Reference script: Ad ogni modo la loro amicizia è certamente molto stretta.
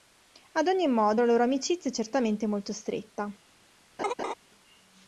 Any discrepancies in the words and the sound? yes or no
yes